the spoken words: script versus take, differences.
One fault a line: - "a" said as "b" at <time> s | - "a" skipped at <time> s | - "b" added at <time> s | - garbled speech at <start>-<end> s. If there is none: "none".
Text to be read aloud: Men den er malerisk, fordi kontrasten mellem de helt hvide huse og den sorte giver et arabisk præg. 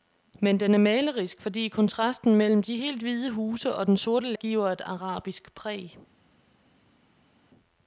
none